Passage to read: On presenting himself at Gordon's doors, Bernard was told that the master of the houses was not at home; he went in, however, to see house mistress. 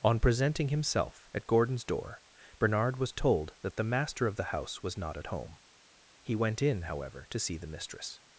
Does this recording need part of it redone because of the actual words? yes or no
yes